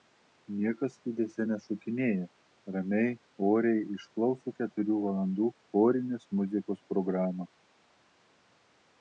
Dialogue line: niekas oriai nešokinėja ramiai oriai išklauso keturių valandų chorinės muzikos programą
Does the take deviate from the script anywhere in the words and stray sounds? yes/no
yes